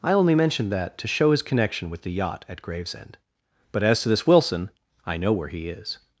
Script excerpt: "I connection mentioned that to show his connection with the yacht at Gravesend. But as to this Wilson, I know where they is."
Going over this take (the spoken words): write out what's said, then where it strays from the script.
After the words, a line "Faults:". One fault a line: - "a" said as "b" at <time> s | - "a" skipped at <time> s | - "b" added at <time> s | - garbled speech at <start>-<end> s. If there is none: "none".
"I only mentioned that to show his connection with the yacht at Gravesend. But as to this Wilson, I know where he is."
Faults:
- "connection" said as "only" at 0.1 s
- "they" said as "he" at 5.5 s